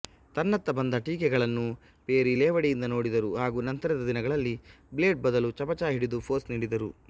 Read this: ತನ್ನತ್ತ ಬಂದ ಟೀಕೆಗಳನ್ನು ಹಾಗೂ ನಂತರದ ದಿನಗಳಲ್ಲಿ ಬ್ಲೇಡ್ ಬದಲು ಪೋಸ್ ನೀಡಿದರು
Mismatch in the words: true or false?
true